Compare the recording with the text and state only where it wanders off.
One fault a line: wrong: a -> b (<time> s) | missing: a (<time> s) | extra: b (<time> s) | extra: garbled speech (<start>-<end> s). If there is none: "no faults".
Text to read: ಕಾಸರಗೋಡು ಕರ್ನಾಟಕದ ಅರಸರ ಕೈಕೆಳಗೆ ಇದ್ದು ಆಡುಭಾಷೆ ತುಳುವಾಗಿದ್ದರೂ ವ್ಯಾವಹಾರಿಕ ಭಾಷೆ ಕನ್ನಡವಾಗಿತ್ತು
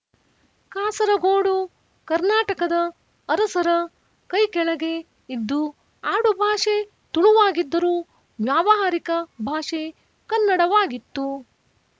no faults